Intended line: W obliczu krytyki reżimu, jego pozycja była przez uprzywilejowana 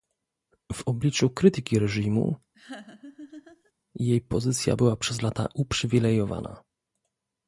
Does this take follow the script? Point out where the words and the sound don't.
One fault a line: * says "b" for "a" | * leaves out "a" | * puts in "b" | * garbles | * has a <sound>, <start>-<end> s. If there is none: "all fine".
* has a laugh, 2.5-3.7 s
* says "jej" for "jego"
* puts in "lata"